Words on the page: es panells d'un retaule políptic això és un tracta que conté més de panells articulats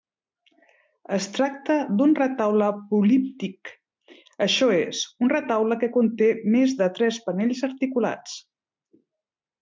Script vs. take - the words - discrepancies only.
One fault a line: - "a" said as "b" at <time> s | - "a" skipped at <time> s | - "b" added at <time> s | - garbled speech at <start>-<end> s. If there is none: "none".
- "panells" said as "tracta" at 1.4 s
- "tracta" said as "retaule" at 5.3 s
- "tres" added at 7.0 s